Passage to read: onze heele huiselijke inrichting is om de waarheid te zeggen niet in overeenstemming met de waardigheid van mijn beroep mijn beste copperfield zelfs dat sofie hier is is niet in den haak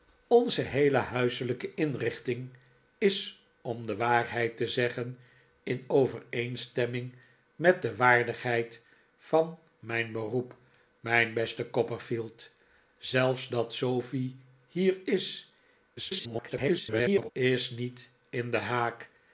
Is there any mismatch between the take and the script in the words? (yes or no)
yes